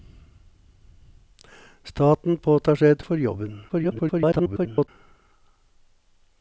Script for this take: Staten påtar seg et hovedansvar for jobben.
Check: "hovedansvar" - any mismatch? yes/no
yes